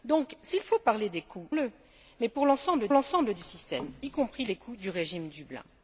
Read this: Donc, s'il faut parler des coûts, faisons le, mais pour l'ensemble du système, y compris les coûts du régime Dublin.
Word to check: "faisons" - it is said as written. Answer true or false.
false